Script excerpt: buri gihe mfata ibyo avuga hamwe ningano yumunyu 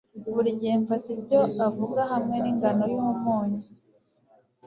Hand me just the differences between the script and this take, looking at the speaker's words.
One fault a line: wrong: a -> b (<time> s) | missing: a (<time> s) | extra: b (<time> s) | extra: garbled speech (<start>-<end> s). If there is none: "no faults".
no faults